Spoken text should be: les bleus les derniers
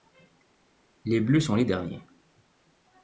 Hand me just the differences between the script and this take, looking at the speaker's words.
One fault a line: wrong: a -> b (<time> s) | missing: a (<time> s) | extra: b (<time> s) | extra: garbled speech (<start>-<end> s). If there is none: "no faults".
extra: sont (1.4 s)